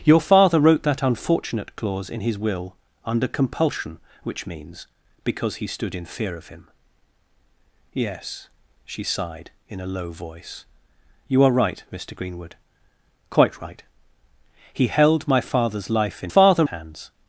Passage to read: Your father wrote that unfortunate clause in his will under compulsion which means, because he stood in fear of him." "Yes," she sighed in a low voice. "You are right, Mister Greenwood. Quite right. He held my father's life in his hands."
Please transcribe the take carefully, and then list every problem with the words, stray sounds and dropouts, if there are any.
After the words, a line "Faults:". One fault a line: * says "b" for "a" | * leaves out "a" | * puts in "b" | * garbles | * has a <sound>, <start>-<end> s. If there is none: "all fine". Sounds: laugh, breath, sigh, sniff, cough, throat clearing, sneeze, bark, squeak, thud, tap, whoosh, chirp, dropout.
Your father wrote that unfortunate clause in his will under compulsion which means, because he stood in fear of him." "Yes," she sighed in a low voice. "You are right, Mister Greenwood. Quite right. He held my father's life in father hands."
Faults:
* says "father" for "his"